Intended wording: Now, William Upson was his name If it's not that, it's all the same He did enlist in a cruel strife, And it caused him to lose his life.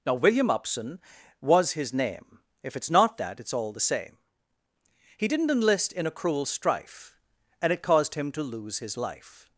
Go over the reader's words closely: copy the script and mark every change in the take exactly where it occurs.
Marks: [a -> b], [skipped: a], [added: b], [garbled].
Now, William Upson was his name If it's not that, it's all the same He [did -> didn't] enlist in a cruel strife, And it caused him to lose his life.